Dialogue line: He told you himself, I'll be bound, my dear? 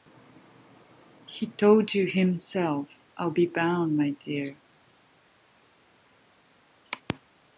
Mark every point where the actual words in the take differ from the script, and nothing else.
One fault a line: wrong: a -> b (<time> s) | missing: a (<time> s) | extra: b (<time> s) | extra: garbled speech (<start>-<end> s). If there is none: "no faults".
no faults